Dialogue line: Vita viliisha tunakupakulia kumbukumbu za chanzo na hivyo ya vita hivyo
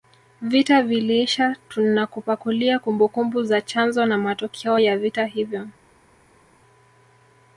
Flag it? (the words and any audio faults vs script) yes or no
yes